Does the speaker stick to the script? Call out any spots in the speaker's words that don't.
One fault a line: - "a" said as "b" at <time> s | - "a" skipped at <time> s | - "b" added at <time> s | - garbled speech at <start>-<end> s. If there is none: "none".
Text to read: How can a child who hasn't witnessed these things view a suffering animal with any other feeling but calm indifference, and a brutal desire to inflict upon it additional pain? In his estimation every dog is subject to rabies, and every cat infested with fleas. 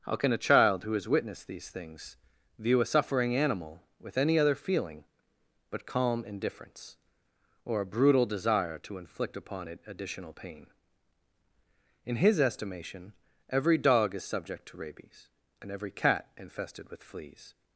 - "hasn't" said as "has" at 0.9 s
- "and" said as "or" at 7.6 s